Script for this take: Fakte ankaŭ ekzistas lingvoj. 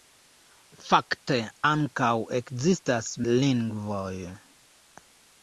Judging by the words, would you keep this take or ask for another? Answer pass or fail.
pass